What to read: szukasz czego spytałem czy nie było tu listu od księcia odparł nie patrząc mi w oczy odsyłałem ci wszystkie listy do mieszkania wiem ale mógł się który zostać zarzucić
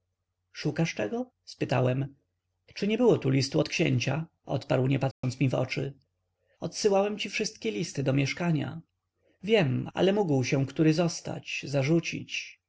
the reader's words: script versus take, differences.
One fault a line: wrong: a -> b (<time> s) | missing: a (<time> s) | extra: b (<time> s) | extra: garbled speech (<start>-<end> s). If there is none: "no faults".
no faults